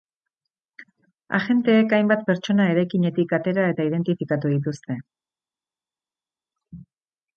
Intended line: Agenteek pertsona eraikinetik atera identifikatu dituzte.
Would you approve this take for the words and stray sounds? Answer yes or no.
no